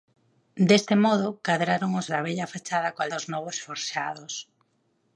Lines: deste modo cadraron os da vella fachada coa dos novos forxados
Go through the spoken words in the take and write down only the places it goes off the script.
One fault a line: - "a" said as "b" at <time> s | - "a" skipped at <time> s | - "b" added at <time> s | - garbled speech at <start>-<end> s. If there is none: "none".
none